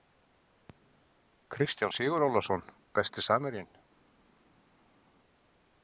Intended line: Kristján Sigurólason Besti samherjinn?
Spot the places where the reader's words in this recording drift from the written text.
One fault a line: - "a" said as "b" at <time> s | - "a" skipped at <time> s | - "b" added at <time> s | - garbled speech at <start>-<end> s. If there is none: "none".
none